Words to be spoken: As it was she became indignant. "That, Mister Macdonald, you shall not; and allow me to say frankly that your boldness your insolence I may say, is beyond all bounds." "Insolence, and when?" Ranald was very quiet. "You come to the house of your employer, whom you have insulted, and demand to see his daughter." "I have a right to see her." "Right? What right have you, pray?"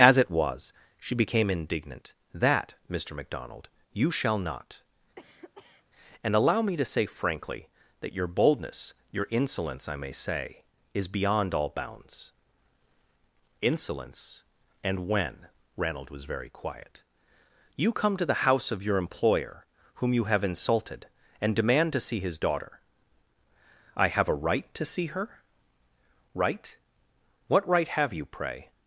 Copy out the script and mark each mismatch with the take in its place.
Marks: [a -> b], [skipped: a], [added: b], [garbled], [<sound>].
As it was she became indignant. "That, Mister Macdonald, you shall not; [cough] and allow me to say frankly that your boldness your insolence I may say, is beyond all bounds." "Insolence, and when?" Ranald was very quiet. "You come to the house of your employer, whom you have insulted, and demand to see his daughter." "I have a right to see her." "Right? What right have you, pray?"